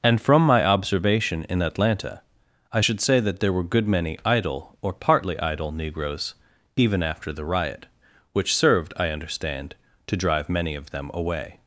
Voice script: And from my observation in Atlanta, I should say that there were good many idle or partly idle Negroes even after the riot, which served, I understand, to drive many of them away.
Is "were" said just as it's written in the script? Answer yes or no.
yes